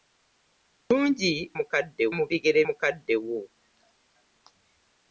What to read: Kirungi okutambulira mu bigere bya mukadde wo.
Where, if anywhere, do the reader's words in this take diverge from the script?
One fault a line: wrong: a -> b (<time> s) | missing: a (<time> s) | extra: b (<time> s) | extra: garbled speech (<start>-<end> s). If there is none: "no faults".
wrong: okutambulira -> mukadde (1.6 s)
missing: bya (2.6 s)